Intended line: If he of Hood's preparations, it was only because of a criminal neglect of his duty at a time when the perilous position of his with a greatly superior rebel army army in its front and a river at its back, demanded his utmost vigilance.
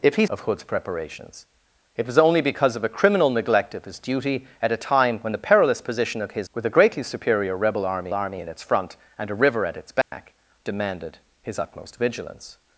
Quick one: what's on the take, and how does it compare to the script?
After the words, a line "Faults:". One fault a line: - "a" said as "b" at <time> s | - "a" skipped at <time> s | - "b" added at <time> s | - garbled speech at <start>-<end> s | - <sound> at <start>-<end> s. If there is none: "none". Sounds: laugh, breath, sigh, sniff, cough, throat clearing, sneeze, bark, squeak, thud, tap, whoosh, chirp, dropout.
If he of Hood's preparations, it was only because of a criminal neglect of his duty at a time when the perilous position of his with a greatly superior rebel army army in its front and a river at its back, demanded his utmost vigilance.
Faults:
- dropout at 10.0-10.1 s